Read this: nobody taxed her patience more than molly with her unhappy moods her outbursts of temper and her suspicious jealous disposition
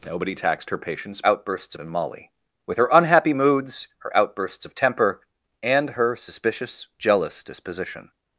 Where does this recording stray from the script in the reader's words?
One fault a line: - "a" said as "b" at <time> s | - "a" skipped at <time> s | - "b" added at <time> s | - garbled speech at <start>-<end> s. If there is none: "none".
- "more" said as "outbursts" at 1.3 s